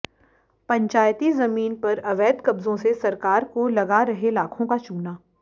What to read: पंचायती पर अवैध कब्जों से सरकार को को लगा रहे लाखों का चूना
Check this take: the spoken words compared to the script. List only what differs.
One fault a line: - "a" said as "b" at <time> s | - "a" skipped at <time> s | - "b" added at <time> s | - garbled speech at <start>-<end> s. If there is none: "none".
- "जमीन" added at 1.3 s
- "को" skipped at 3.7 s